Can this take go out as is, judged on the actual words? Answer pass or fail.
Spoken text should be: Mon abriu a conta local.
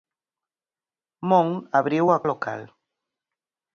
fail